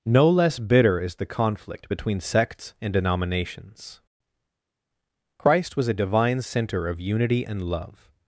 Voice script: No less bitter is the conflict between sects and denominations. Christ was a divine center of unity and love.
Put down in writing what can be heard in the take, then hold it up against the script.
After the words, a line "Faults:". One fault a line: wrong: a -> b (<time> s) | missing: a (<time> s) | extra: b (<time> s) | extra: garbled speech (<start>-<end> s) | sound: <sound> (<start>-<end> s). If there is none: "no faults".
No less bitter is the conflict between sects and denominations. Christ was a divine center of unity and love.
Faults:
no faults